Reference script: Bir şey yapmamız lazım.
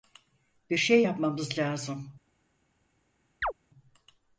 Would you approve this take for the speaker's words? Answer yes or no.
yes